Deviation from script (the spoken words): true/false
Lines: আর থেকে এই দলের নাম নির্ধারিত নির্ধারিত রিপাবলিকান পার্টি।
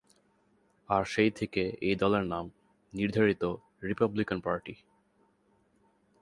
true